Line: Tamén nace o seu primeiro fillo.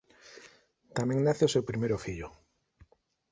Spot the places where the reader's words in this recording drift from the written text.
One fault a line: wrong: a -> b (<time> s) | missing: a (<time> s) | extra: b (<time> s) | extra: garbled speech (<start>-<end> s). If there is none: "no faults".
no faults